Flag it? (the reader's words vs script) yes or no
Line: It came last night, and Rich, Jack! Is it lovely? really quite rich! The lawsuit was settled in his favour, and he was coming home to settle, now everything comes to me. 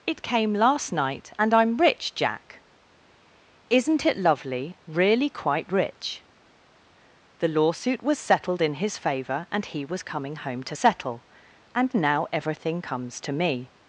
yes